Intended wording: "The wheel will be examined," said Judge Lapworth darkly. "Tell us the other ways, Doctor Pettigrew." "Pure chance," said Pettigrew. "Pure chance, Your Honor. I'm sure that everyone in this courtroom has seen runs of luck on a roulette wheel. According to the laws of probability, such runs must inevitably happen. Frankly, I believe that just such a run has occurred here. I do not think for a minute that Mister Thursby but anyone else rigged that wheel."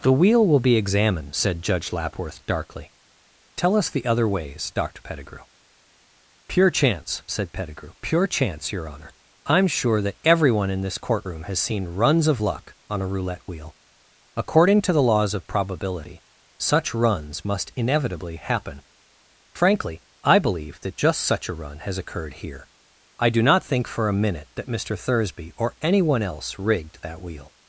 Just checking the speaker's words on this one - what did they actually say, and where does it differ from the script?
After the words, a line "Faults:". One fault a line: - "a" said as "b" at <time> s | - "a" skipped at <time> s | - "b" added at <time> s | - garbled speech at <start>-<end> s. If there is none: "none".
"The wheel will be examined," said Judge Lapworth darkly. "Tell us the other ways, Doctor Pettigrew." "Pure chance," said Pettigrew. "Pure chance, Your Honor. I'm sure that everyone in this courtroom has seen runs of luck on a roulette wheel. According to the laws of probability, such runs must inevitably happen. Frankly, I believe that just such a run has occurred here. I do not think for a minute that Mister Thursby or anyone else rigged that wheel."
Faults:
- "but" said as "or" at 25.5 s